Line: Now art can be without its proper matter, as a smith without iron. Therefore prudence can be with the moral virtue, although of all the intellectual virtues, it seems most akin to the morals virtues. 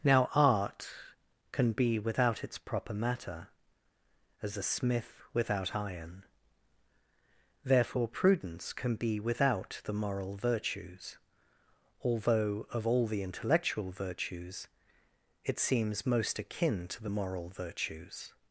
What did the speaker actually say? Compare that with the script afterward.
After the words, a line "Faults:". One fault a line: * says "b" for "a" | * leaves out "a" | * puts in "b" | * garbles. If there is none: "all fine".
Now art can be without its proper matter, as a smith without iron. Therefore prudence can be without the moral virtues, although of all the intellectual virtues, it seems most akin to the moral virtues.
Faults:
* says "without" for "with"
* says "virtues" for "virtue"
* says "moral" for "morals"